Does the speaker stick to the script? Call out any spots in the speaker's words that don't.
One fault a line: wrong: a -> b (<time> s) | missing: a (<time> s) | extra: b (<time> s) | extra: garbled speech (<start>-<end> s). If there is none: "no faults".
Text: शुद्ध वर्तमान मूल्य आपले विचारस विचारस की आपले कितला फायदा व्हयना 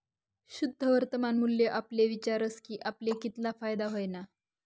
missing: विचारस (2.6 s)